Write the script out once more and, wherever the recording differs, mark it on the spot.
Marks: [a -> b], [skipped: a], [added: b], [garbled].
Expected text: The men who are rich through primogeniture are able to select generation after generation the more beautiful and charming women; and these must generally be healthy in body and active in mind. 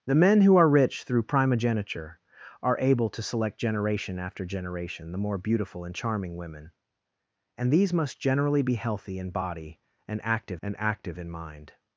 The men who are rich through primogeniture are able to select generation after generation the more beautiful and charming women; and these must generally be healthy in body and active [added: and active] in mind.